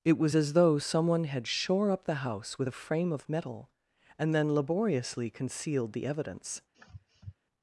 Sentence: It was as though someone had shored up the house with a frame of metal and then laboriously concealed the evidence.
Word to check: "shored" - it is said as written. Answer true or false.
false